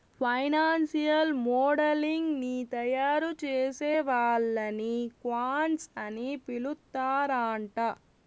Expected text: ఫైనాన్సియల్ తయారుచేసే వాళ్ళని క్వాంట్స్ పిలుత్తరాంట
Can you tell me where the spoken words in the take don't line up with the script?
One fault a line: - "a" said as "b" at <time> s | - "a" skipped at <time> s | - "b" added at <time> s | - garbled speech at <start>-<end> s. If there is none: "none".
- "మోడలింగ్ ని" added at 1.4 s
- "అని" added at 6.0 s